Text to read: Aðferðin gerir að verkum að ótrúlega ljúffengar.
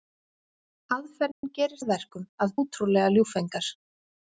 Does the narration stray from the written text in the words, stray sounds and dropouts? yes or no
yes